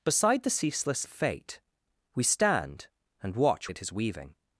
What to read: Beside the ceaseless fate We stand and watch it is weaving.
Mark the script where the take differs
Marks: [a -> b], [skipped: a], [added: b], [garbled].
Beside the ceaseless fate We stand and watch it is weaving.